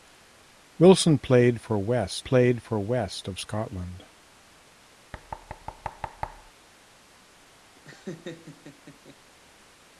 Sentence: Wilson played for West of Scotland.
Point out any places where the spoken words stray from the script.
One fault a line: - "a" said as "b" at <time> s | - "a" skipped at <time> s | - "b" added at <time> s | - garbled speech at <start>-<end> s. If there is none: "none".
- "played for West" added at 2.2 s